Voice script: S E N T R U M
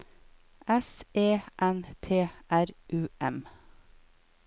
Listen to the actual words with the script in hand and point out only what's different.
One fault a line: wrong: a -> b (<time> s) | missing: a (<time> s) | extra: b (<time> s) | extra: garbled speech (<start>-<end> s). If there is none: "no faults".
no faults